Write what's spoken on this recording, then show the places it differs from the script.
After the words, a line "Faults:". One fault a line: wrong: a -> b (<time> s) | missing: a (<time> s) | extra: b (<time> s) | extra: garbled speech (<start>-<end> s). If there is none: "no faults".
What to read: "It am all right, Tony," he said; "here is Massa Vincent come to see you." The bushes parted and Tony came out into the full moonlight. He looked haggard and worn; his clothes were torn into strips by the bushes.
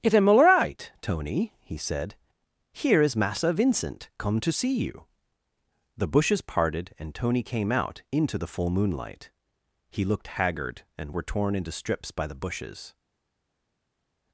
"It am all right, Tony," he said; "here is Massa Vincent come to see you." The bushes parted and Tony came out into the full moonlight. He looked haggard and were torn into strips by the bushes.
Faults:
missing: worn his clothes (11.2 s)